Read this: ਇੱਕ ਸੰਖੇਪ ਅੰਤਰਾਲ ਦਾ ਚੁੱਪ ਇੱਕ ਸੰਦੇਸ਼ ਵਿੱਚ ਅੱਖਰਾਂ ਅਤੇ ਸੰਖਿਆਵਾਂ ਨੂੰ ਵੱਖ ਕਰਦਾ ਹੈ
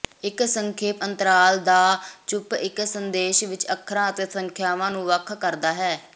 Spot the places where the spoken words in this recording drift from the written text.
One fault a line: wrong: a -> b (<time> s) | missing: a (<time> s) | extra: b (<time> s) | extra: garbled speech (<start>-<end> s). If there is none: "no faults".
no faults